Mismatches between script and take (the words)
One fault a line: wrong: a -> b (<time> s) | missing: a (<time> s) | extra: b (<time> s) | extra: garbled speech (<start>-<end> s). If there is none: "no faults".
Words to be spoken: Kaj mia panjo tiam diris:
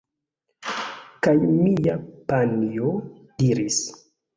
missing: tiam (3.0 s)